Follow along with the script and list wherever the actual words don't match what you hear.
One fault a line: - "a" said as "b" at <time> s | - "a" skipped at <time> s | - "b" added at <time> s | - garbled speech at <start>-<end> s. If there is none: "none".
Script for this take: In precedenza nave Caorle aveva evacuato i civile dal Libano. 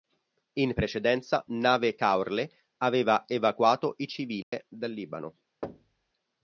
none